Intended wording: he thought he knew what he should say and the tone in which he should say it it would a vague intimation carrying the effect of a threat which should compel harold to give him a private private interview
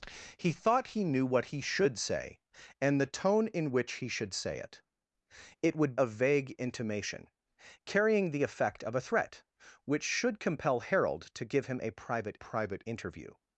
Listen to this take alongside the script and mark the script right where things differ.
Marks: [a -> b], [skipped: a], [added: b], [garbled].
he thought he knew what he should say and the tone in which he should say it it would a vague intimation carrying the effect of a threat which should compel harold to give him a private private interview